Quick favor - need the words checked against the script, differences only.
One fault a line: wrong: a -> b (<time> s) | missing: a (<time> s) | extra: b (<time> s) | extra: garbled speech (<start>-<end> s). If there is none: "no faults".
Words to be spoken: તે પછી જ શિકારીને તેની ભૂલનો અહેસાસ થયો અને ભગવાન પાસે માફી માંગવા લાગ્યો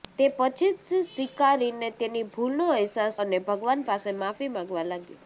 missing: થયો (3.2 s)